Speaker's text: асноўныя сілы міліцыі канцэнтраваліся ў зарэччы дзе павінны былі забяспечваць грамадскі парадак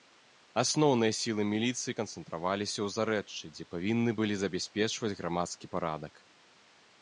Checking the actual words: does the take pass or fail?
pass